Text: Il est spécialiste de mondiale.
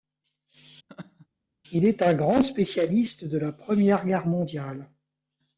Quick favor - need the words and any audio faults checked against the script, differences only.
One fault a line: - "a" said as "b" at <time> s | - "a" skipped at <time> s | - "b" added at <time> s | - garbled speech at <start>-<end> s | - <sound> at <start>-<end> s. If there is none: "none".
- laugh at 0.9-1.3 s
- "un grand" added at 2.0 s
- "la Première Guerre" added at 3.4 s